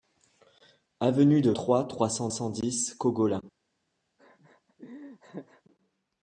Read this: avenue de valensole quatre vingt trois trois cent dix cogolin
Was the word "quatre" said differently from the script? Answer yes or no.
yes